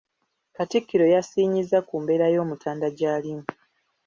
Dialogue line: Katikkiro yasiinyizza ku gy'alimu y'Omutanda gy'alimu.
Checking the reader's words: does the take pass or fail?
fail